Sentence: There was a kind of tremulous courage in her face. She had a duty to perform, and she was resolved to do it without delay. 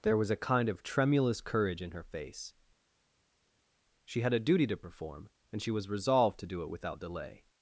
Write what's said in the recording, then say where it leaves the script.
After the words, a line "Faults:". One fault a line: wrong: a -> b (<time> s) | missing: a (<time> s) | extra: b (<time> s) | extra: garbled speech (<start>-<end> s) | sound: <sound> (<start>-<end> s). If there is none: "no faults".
There was a kind of tremulous courage in her face. She had a duty to perform, and she was resolved to do it without delay.
Faults:
no faults